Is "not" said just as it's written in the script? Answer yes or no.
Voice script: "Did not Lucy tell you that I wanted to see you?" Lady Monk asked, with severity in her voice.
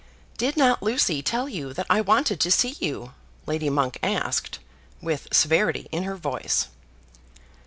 yes